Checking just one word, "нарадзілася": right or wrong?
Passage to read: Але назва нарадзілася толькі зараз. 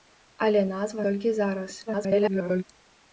wrong